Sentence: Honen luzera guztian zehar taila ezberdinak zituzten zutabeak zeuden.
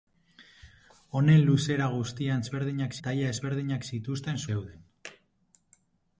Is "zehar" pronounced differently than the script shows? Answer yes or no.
yes